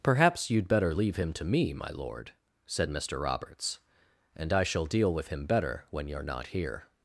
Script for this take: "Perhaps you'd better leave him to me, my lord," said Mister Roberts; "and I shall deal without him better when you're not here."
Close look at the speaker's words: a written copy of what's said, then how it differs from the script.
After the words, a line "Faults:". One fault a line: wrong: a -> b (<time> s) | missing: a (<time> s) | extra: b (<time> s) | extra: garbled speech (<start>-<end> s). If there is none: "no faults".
"Perhaps you'd better leave him to me, my lord," said Mister Roberts; "and I shall deal with him better when you're not here."
Faults:
wrong: without -> with (5.1 s)